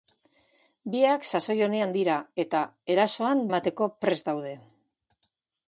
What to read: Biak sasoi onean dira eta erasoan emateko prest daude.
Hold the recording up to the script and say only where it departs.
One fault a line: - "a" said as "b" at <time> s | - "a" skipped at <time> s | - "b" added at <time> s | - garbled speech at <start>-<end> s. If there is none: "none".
none